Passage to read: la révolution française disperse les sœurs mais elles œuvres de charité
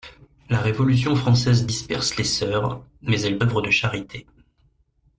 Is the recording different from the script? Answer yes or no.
no